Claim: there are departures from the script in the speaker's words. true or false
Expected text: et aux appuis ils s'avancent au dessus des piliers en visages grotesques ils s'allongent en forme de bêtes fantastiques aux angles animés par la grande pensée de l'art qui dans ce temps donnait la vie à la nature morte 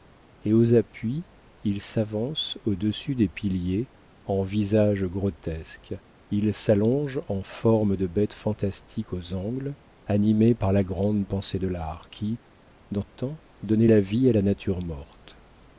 true